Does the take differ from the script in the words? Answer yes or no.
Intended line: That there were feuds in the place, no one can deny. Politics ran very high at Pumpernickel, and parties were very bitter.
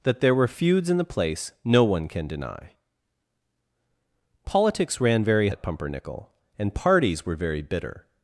yes